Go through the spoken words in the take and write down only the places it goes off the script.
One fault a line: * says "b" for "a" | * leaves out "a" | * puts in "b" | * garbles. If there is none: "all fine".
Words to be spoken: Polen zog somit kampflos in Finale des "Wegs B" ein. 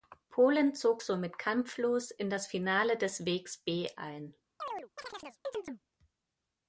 * puts in "das"